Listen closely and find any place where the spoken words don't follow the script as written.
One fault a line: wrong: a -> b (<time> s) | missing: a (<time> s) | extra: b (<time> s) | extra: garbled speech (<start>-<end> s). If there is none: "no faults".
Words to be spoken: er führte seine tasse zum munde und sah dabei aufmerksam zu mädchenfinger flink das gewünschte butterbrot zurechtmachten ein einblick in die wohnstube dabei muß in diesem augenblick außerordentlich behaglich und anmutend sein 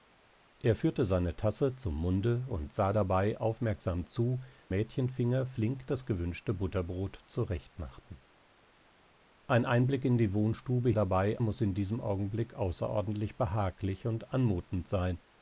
no faults